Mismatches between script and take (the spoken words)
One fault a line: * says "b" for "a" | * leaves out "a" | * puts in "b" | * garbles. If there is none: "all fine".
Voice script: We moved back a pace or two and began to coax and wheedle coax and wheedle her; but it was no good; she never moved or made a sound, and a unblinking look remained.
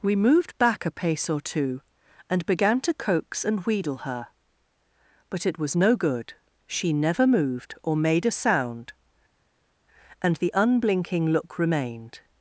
* leaves out "coax and wheedle"
* says "the" for "a"